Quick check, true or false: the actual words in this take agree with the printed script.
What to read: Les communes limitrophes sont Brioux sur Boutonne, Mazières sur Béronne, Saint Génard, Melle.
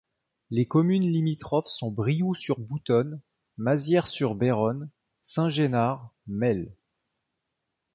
true